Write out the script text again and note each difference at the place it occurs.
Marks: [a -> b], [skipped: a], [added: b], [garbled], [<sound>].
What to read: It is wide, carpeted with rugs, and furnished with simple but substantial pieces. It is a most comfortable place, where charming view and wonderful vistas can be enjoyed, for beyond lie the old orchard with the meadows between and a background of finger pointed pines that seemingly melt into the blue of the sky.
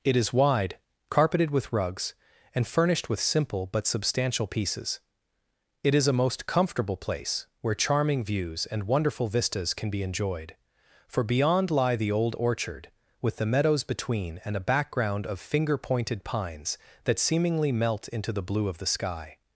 It is wide, carpeted with rugs, and furnished with simple but substantial pieces. It is a most comfortable place, where charming [view -> views] and wonderful vistas can be enjoyed, for beyond lie the old orchard with the meadows between and a background of finger pointed pines that seemingly melt into the blue of the sky.